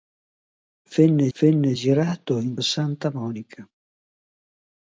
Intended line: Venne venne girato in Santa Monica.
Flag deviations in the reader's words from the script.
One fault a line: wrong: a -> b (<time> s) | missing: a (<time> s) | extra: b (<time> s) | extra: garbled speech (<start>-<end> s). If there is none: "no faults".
no faults